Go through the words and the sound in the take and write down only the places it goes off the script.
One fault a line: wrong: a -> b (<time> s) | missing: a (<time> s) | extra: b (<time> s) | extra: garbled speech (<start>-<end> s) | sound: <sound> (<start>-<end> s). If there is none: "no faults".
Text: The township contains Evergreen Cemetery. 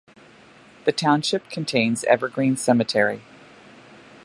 no faults